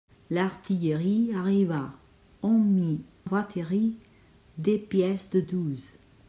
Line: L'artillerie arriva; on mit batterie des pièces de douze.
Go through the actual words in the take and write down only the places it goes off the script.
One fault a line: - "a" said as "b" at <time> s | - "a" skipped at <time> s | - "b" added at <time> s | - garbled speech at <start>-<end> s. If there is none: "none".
none